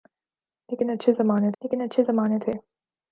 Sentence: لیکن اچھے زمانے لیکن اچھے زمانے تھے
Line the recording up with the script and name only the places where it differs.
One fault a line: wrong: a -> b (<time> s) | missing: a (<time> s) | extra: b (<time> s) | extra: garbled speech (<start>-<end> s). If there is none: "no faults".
no faults